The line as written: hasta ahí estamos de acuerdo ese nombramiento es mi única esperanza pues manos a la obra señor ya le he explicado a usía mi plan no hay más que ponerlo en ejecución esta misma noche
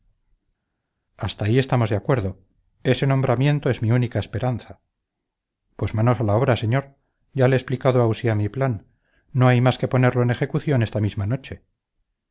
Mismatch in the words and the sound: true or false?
false